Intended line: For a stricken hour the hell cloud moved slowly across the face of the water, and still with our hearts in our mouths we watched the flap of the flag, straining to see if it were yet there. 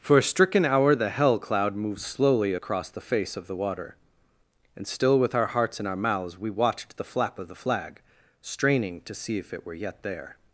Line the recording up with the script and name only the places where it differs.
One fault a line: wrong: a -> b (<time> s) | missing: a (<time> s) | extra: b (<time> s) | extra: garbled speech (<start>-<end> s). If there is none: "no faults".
no faults